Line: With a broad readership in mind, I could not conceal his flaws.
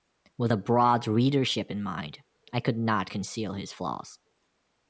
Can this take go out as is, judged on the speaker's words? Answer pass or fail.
pass